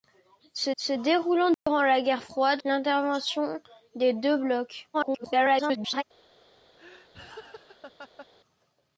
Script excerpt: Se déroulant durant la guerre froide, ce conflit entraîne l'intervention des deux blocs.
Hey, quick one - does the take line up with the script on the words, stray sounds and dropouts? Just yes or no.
no